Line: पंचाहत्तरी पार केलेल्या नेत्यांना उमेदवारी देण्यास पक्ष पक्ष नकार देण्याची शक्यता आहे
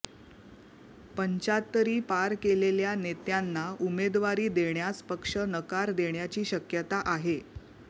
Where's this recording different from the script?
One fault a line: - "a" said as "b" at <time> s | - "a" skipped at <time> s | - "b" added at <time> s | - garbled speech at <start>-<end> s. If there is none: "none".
- "पक्ष" skipped at 5.4 s